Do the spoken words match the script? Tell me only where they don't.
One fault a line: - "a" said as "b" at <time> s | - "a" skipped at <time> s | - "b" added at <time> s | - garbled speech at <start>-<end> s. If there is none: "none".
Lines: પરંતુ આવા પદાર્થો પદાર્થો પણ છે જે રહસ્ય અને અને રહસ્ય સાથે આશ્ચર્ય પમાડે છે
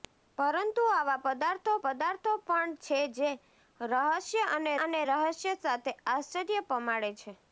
none